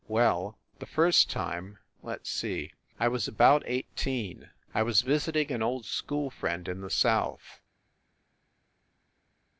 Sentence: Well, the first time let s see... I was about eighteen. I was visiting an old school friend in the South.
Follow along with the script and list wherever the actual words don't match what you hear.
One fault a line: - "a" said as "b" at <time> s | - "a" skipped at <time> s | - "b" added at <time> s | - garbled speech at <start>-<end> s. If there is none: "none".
none